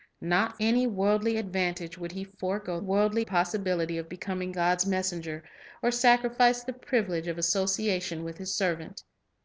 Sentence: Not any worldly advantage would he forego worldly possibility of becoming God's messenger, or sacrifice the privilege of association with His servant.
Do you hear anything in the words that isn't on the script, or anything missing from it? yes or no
no